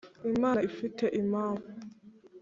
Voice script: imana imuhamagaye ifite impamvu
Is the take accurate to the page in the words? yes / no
no